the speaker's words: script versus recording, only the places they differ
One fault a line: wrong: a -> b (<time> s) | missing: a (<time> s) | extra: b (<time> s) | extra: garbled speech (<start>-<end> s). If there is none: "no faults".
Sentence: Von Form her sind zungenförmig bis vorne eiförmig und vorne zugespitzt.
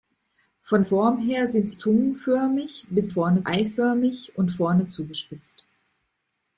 no faults